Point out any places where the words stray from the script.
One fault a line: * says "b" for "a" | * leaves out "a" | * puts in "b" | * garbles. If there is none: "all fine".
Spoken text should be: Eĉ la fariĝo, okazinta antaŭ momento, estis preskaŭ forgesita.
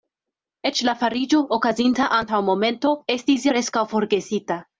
all fine